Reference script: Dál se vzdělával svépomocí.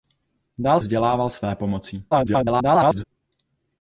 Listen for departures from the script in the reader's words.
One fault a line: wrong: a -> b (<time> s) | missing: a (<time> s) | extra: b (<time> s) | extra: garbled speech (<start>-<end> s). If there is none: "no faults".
missing: se (0.8 s)
extra: garbled speech (2.1-3.0 s)